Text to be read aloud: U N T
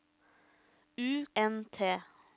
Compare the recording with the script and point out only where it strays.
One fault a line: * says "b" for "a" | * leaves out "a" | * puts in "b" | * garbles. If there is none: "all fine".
all fine